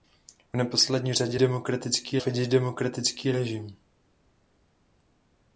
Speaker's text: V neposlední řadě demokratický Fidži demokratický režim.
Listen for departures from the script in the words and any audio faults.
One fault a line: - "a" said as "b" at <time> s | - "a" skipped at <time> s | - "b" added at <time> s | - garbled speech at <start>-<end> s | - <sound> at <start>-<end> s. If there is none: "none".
none